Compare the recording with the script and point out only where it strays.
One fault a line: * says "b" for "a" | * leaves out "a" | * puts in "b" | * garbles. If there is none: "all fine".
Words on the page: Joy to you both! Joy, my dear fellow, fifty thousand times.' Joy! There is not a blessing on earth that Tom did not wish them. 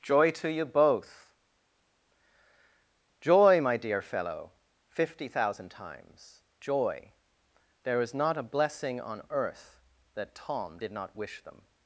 all fine